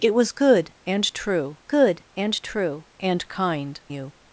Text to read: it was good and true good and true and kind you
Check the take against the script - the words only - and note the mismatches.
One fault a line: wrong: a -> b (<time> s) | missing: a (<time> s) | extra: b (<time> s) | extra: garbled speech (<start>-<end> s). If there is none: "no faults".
no faults